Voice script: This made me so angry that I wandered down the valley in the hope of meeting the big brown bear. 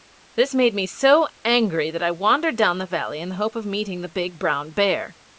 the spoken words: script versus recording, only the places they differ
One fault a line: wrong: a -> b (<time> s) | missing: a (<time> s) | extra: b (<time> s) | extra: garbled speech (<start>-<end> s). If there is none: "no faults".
no faults